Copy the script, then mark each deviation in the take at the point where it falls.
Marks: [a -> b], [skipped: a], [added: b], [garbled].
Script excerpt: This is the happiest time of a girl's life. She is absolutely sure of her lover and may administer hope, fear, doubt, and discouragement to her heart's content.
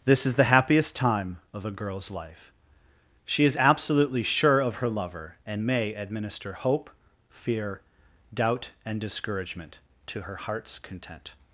This is the happiest time of a girl's life. She is absolutely sure of her lover and may administer hope, fear, doubt, and discouragement to her heart's content.